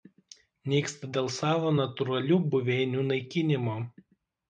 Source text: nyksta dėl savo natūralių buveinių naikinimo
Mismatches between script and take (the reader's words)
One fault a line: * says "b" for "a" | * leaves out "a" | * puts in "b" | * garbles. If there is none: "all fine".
all fine